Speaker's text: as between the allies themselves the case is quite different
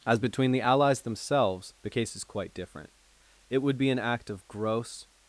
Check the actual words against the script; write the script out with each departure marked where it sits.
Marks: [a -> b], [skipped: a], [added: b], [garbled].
as between the allies themselves the case is quite different [added: it would be an act of gross]